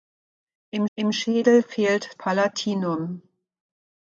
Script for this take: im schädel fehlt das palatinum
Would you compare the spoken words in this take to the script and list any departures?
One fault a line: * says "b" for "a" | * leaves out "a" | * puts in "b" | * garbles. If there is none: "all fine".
* puts in "im"
* leaves out "das"